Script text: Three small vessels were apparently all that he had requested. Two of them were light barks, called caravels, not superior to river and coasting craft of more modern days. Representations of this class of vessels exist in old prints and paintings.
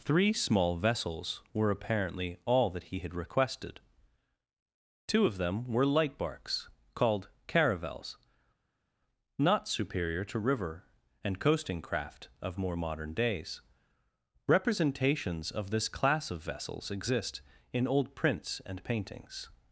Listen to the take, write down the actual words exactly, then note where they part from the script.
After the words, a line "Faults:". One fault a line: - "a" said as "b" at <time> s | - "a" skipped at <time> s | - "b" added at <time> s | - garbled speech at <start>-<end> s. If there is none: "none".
Three small vessels were apparently all that he had requested. Two of them were light barks, called caravels, not superior to river and coasting craft of more modern days. Representations of this class of vessels exist in old prints and paintings.
Faults:
none